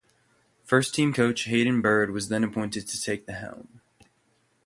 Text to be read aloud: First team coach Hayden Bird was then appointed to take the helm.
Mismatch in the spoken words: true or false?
false